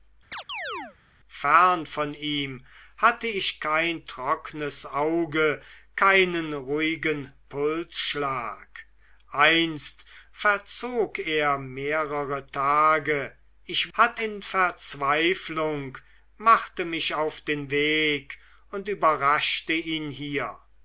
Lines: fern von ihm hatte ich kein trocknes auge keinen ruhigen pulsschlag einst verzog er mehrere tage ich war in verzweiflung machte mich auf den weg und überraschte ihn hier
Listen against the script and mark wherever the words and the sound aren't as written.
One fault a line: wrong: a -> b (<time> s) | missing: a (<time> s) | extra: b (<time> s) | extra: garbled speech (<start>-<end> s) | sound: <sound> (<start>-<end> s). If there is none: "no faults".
sound: chirp (0.3-1.0 s)
wrong: war -> hatte (13.9 s)